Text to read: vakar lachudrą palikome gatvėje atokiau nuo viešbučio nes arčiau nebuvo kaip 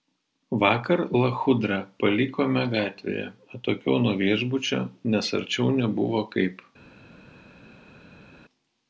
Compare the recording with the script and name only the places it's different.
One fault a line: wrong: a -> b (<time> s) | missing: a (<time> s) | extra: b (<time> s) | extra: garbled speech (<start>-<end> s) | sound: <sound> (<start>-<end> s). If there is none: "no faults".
no faults